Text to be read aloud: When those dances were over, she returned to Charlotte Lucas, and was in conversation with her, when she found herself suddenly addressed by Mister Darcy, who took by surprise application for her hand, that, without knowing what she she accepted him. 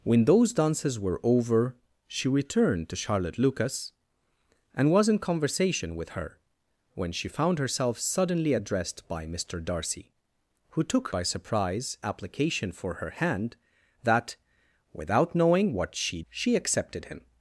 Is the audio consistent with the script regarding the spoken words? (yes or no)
yes